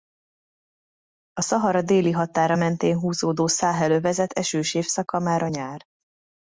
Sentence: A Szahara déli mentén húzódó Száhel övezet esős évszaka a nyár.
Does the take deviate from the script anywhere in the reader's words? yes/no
yes